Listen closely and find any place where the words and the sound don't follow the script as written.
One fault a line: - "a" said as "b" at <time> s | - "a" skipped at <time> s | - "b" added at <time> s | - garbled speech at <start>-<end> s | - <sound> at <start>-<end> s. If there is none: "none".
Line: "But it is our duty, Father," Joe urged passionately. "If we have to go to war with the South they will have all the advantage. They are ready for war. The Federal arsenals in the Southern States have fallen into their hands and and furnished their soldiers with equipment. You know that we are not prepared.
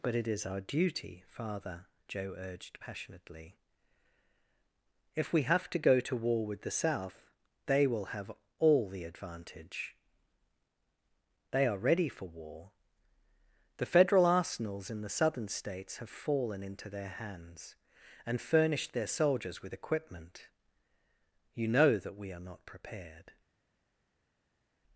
- "and" skipped at 18.4 s